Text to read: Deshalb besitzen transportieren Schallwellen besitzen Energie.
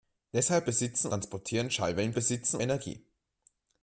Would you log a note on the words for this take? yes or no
no